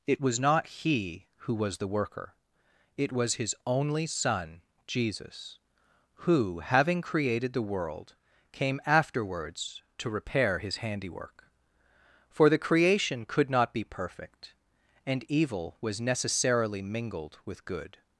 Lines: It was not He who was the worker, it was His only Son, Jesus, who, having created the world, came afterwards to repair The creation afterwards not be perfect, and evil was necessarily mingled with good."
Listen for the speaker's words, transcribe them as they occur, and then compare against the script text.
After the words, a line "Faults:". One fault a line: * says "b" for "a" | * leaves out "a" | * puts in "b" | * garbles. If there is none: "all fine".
It was not He who was the worker, it was His only Son, Jesus, who, having created the world, came afterwards to repair His handiwork. For the creation could not be perfect, and evil was necessarily mingled with good."
Faults:
* puts in "His handiwork For"
* says "could" for "afterwards"